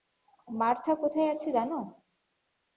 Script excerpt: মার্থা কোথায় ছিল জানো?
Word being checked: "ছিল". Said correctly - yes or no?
no